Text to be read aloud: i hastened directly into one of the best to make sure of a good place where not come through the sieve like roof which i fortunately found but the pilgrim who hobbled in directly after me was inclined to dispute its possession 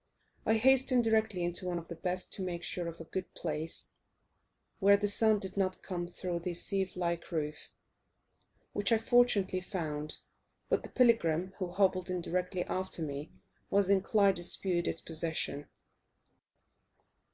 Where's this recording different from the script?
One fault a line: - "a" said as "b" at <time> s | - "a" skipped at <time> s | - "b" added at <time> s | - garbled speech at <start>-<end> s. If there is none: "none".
- "the sun did" added at 4.9 s